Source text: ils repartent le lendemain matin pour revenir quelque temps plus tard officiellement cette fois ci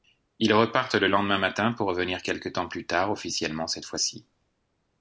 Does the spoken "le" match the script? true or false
true